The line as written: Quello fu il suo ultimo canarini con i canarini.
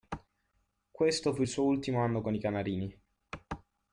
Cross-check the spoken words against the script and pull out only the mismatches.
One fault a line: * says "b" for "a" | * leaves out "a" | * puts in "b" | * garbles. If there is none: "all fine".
* says "Questo" for "Quello"
* says "anno" for "canarini"